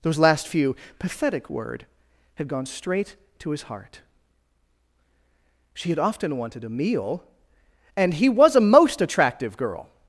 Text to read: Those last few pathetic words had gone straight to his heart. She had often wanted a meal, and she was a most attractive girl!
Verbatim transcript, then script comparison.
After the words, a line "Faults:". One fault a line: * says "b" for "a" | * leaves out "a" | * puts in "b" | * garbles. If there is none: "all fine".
Those last few pathetic word had gone straight to his heart. She had often wanted a meal, and he was a most attractive girl!
Faults:
* says "word" for "words"
* says "he" for "she"